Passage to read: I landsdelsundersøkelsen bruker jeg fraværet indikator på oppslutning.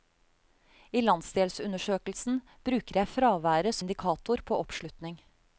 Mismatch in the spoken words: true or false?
false